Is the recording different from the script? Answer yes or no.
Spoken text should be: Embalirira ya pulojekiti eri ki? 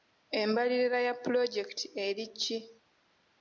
no